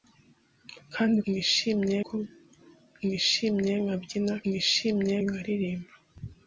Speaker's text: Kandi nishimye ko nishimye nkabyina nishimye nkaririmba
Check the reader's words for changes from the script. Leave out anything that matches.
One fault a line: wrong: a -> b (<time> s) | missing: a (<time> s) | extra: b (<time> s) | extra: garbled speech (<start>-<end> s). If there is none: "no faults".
no faults